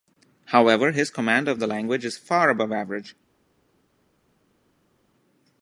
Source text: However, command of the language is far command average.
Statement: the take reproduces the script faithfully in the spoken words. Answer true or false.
false